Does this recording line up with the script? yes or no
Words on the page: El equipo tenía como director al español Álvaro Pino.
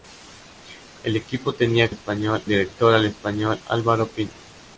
no